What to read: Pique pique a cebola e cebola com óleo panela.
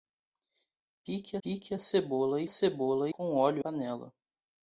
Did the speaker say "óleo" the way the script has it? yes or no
yes